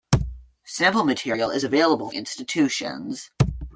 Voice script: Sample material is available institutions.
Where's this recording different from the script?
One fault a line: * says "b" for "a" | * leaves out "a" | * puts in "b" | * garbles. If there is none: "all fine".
all fine